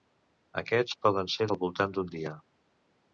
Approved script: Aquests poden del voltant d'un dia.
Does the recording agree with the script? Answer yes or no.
no